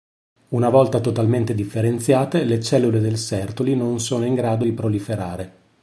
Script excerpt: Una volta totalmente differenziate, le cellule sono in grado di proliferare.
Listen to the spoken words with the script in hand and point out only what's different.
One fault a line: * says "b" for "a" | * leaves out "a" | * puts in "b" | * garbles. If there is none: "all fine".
* puts in "del Sertoli non"